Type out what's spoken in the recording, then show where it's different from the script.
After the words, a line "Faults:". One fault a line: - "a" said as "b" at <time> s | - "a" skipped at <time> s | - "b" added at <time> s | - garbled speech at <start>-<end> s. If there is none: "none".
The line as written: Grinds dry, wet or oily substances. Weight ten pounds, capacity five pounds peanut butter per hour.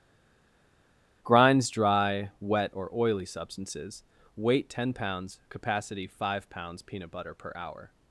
Grinds dry, wet or oily substances. Weight ten pounds, capacity five pounds peanut butter per hour.
Faults:
none